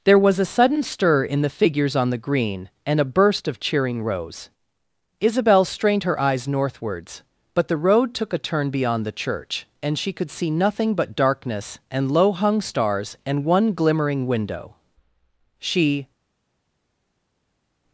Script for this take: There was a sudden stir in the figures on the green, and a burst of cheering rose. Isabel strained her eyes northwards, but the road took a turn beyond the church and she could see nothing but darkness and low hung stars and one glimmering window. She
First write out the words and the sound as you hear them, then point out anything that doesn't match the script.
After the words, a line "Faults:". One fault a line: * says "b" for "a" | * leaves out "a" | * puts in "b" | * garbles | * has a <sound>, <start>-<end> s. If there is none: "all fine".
There was a sudden stir in the figures on the green, and a burst of cheering rose. Isabel strained her eyes northwards, but the road took a turn beyond the church and she could see nothing but darkness and low hung stars and one glimmering window. She
Faults:
all fine